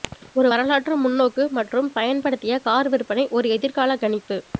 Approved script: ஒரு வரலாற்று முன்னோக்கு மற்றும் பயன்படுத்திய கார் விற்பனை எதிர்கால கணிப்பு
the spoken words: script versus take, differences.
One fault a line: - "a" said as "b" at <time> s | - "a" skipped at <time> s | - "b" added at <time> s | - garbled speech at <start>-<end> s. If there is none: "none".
- "ஒரு" added at 3.4 s